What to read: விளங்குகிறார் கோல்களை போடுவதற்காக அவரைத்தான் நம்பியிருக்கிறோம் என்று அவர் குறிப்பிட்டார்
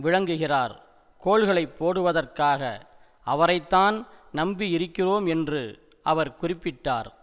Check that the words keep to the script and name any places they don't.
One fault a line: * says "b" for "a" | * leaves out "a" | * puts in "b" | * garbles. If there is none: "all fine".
all fine